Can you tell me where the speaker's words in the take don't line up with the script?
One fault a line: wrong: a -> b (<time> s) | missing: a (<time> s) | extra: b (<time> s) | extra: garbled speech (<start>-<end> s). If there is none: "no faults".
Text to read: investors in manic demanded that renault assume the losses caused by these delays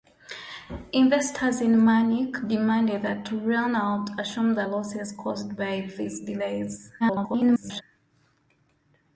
extra: garbled speech (7.0-7.8 s)